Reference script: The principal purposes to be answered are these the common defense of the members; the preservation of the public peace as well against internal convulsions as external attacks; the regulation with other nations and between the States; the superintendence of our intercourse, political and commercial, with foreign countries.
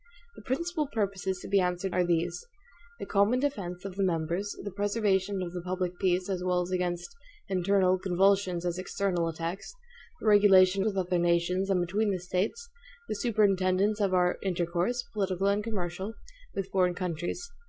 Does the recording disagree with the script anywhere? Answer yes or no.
no